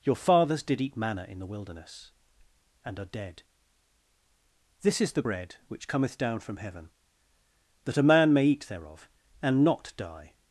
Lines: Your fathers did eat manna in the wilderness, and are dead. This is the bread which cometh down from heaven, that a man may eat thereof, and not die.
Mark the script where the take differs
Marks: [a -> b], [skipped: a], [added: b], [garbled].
Your fathers did eat manna in the wilderness, and are dead. This is the bread which cometh down from heaven, that a man may eat thereof, and not die.